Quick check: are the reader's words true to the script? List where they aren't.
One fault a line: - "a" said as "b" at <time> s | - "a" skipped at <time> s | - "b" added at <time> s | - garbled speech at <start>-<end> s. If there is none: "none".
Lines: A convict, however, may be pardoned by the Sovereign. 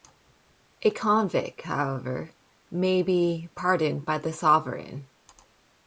none